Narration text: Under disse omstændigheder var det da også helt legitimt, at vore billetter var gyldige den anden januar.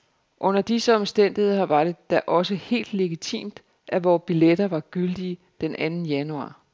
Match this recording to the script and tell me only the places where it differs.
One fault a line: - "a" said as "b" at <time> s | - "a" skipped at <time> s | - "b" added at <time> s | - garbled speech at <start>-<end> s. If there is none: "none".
none